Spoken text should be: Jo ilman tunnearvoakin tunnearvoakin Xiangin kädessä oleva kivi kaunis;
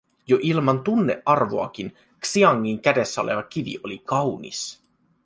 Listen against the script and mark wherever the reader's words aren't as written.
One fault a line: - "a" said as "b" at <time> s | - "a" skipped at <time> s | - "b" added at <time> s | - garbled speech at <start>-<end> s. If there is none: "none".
- "tunnearvoakin" skipped at 2.0 s
- "oli" added at 3.8 s